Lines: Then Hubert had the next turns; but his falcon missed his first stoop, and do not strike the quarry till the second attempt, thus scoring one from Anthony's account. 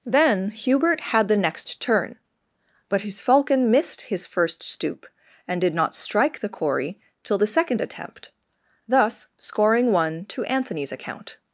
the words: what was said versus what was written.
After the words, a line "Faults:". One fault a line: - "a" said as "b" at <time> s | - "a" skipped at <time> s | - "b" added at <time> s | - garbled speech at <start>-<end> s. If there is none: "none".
Then Hubert had the next turn; but his falcon missed his first stoop, and did not strike the quarry till the second attempt, thus scoring one to Anthony's account.
Faults:
- "turns" said as "turn" at 1.8 s
- "do" said as "did" at 5.6 s
- "from" said as "to" at 10.3 s